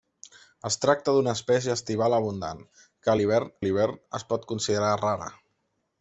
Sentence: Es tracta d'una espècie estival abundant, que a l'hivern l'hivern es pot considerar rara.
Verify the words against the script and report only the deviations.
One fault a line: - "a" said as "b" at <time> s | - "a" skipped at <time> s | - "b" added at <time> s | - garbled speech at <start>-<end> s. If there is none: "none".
none